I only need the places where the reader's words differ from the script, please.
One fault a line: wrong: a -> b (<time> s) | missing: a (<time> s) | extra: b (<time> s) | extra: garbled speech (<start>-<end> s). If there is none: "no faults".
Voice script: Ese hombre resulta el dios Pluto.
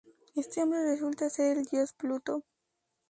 wrong: Ese -> Este (0.3 s)
extra: ser (1.3 s)